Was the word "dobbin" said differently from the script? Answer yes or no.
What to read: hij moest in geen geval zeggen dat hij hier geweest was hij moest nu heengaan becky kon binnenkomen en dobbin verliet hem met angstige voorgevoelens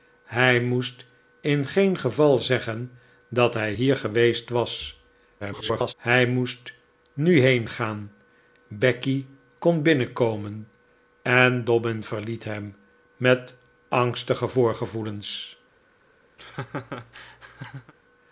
no